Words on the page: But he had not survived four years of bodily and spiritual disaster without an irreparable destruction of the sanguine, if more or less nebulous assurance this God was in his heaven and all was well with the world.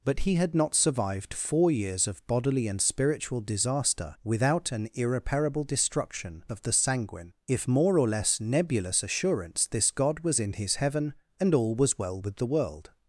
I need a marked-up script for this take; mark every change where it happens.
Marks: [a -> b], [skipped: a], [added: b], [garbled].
But he had not survived four years of bodily and spiritual disaster without an irreparable destruction of the sanguine, if more or less nebulous assurance this God was in his heaven and all was well with the world.